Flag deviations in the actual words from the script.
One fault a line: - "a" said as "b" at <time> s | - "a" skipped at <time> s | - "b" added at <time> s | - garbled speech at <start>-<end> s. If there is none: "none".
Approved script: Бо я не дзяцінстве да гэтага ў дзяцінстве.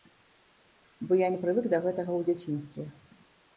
- "дзяцінстве" said as "прывык" at 1.5 s